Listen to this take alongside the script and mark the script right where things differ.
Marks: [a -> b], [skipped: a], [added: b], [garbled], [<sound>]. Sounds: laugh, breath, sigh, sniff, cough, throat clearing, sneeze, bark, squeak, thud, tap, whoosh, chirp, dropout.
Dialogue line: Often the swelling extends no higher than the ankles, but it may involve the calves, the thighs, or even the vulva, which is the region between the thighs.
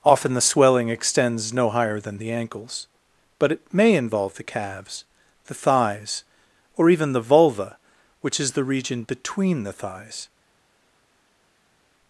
Often the swelling extends no higher than the ankles, but it may involve the calves, the thighs, or even the vulva, which is the region between the thighs.